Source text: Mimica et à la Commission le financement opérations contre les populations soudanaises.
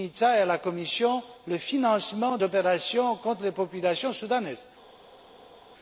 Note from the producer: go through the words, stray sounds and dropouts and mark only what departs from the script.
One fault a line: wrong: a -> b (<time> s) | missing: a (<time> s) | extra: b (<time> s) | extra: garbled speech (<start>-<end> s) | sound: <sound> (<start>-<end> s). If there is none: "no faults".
no faults